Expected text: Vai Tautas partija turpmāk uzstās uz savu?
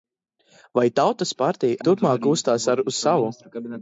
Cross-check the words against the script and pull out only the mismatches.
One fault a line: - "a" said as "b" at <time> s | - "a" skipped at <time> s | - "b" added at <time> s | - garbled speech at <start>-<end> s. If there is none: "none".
none